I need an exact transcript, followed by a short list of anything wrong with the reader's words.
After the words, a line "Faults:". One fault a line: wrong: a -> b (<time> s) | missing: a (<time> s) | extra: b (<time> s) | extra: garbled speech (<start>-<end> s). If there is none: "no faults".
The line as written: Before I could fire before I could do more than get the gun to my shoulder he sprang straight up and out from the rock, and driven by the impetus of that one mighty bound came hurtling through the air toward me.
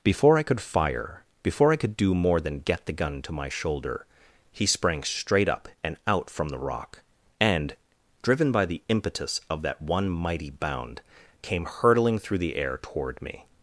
Before I could fire before I could do more than get the gun to my shoulder he sprang straight up and out from the rock, and driven by the impetus of that one mighty bound came hurtling through the air toward me.
Faults:
no faults